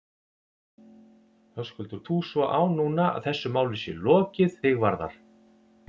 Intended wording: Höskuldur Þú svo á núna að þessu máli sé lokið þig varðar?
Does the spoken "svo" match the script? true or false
true